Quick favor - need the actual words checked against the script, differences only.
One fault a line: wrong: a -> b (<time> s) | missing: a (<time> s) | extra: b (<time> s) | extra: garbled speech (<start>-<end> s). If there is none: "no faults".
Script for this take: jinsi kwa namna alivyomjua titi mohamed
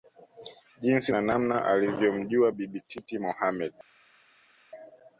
wrong: kwa -> na (1.1 s)
extra: bibi (2.5 s)